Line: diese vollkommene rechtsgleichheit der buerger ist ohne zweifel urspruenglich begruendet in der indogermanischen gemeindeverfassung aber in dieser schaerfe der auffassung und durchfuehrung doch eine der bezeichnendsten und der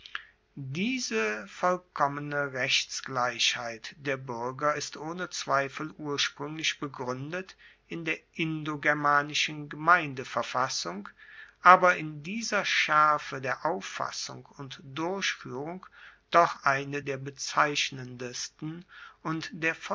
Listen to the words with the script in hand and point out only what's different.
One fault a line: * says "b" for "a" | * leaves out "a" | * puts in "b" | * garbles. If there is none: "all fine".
all fine